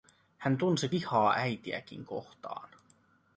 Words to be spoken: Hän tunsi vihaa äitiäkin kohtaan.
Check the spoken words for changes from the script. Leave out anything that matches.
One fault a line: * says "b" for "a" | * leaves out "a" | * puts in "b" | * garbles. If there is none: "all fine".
all fine